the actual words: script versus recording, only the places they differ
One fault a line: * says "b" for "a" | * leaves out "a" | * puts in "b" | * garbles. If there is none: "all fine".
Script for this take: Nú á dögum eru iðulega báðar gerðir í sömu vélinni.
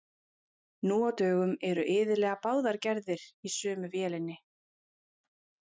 all fine